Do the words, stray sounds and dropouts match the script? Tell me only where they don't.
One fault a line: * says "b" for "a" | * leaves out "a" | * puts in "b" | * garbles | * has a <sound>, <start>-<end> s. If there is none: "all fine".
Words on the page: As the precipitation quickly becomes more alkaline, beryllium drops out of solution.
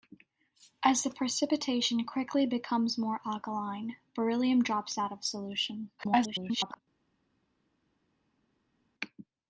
* garbles